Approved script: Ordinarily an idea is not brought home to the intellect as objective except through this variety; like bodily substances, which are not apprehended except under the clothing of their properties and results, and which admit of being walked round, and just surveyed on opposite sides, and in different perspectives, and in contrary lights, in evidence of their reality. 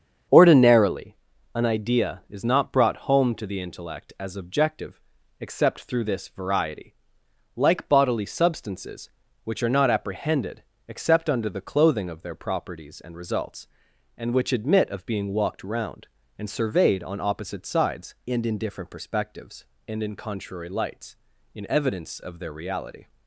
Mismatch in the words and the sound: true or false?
true